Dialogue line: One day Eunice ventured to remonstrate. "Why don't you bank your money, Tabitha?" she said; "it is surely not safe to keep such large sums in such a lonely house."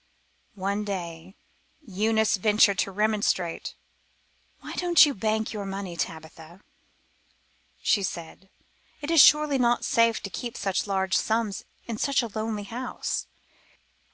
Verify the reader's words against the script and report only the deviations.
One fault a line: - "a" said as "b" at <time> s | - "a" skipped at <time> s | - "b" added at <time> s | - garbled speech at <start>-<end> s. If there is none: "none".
none